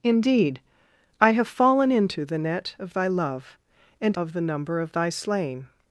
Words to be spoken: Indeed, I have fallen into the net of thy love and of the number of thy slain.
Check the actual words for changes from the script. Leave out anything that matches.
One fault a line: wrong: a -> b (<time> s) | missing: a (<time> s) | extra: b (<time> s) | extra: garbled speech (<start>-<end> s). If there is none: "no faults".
no faults